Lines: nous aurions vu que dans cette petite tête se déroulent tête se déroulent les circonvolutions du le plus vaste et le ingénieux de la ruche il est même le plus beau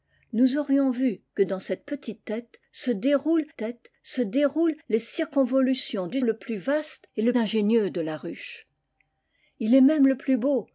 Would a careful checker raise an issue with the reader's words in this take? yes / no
no